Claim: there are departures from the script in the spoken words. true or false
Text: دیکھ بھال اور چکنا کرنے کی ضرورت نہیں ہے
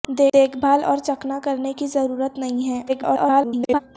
true